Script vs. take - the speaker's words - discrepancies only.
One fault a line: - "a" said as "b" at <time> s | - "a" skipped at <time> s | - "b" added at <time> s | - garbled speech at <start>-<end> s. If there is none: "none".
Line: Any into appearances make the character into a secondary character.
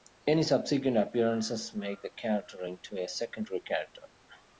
- "into" said as "subsequent" at 0.4 s